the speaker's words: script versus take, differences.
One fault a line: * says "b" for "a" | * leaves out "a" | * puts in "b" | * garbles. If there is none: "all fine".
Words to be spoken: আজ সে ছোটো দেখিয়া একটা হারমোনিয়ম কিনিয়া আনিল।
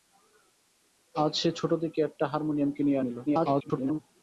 * garbles